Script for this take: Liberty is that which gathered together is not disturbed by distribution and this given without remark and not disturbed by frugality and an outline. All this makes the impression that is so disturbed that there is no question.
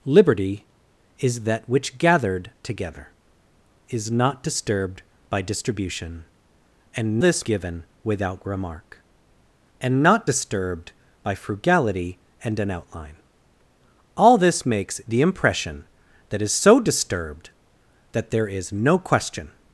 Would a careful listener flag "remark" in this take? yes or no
no